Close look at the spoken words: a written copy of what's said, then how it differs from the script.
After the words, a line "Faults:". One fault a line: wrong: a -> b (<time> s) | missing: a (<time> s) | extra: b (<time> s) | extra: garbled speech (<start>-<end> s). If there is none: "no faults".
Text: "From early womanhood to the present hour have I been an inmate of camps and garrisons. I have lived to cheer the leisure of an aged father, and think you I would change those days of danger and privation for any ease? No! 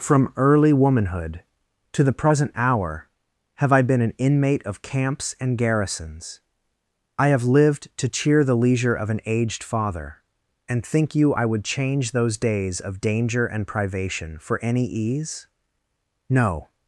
"From early womanhood to the present hour have I been an inmate of camps and garrisons. I have lived to cheer the leisure of an aged father, and think you I would change those days of danger and privation for any ease? No!
Faults:
no faults